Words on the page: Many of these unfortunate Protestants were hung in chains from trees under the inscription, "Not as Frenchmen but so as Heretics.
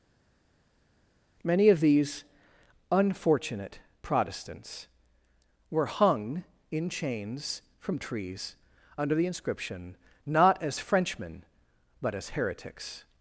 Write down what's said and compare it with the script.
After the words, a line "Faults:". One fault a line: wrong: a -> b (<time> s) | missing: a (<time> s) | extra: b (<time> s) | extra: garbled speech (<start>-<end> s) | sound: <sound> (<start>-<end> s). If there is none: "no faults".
Many of these unfortunate Protestants were hung in chains from trees under the inscription, "Not as Frenchmen but as Heretics.
Faults:
missing: so (12.1 s)